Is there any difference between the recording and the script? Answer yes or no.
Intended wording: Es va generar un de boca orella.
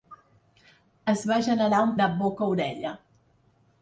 no